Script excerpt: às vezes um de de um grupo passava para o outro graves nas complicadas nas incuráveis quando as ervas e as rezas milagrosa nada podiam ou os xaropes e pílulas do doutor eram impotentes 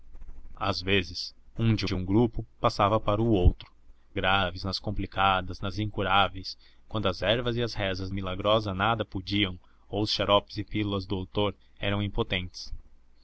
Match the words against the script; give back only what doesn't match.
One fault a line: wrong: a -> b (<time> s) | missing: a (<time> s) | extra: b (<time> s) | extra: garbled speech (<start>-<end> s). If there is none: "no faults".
no faults